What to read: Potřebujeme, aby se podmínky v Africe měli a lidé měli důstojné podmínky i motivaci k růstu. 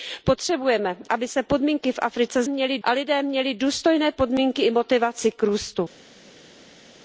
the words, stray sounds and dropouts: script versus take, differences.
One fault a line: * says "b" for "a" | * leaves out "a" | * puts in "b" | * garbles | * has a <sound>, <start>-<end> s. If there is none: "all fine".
all fine